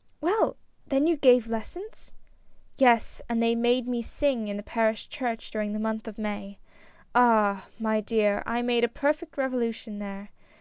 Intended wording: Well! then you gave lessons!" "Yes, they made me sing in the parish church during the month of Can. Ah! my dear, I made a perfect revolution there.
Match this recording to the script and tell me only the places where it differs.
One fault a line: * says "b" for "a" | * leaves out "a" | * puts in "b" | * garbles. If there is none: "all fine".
* puts in "and"
* says "May" for "Can"